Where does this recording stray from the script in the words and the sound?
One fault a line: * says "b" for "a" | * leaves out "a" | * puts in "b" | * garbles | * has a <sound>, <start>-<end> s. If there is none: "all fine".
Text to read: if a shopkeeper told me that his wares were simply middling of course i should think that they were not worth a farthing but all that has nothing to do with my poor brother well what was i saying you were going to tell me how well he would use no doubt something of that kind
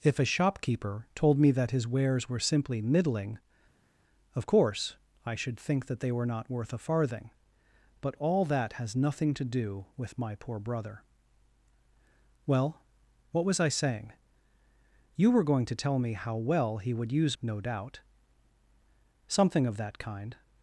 all fine